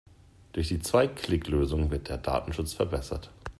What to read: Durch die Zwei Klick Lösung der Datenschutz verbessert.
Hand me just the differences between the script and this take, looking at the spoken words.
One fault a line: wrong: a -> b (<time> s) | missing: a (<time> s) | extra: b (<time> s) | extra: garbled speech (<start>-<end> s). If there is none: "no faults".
extra: wird (1.9 s)